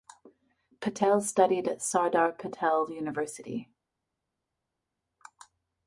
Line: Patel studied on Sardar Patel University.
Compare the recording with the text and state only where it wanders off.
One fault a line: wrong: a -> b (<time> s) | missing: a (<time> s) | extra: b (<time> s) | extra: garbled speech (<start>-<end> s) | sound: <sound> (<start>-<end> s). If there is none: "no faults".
wrong: on -> at (1.7 s)